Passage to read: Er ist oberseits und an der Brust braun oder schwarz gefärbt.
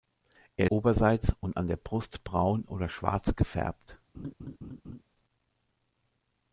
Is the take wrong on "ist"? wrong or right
wrong